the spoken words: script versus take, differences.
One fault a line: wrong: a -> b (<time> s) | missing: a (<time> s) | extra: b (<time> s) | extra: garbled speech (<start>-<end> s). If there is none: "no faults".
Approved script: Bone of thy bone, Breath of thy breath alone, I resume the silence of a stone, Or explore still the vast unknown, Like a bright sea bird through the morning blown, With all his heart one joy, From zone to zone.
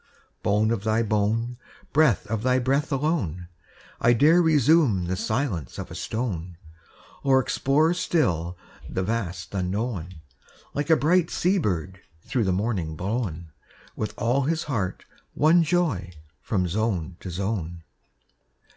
extra: dare (4.1 s)